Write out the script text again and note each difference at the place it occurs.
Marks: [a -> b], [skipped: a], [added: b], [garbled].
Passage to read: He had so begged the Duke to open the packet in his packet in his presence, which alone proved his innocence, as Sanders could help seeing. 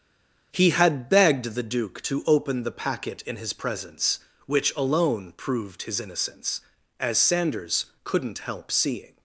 He had [skipped: so] begged the Duke to open the packet in his [skipped: packet in his] presence, which alone proved his innocence, as Sanders [could -> couldn't] help seeing.